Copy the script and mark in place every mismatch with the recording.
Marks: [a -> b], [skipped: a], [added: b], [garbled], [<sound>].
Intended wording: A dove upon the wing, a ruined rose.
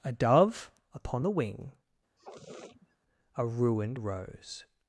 A dove upon the wing, [sniff] a ruined rose.